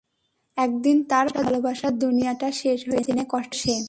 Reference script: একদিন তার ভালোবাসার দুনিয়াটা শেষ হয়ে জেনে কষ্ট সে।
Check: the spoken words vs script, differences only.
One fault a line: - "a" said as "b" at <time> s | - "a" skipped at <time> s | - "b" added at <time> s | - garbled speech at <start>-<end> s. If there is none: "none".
none